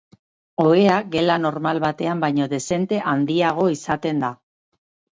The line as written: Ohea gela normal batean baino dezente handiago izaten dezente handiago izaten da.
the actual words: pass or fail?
fail